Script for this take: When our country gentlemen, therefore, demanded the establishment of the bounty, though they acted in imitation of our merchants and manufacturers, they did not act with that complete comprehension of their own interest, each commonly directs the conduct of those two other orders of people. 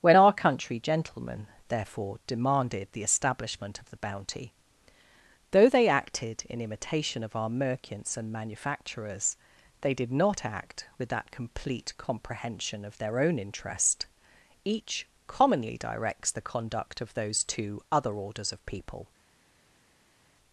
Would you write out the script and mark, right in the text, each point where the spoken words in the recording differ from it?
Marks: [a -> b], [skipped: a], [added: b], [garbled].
When our country gentlemen, therefore, demanded the establishment of the bounty, though they acted in imitation of our merchants and manufacturers, they did not act with that complete comprehension of their own interest, each commonly directs the conduct of those two other orders of people.